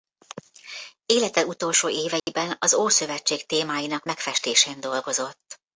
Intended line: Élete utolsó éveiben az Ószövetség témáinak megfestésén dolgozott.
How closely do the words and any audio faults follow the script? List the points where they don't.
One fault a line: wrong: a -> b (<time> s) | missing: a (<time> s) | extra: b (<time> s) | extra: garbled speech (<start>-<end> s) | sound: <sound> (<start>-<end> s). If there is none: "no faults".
sound: dropout (2.2-2.3 s)